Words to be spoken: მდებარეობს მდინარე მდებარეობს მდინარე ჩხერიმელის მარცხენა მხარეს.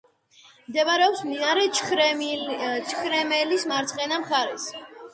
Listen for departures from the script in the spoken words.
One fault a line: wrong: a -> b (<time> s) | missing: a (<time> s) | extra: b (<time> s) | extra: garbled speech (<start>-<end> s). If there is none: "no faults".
missing: მდებარეობს მდინარე (1.7 s)